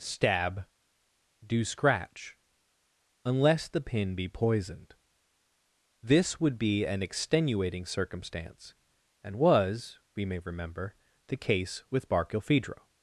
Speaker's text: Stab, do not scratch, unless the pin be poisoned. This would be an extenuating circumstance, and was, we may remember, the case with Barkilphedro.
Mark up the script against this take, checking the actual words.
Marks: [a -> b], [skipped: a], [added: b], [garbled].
Stab, do [skipped: not] scratch, unless the pin be poisoned. This would be an extenuating circumstance, and was, we may remember, the case with Barkilphedro.